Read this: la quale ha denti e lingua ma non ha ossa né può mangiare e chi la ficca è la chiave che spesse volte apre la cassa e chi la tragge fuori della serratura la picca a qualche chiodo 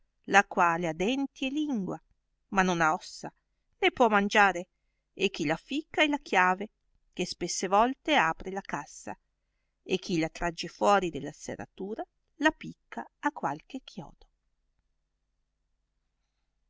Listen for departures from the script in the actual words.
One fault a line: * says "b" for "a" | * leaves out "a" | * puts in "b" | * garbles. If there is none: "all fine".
all fine